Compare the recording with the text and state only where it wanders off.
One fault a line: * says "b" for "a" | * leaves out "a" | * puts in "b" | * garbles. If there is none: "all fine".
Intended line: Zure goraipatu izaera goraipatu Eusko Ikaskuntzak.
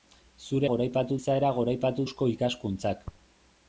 all fine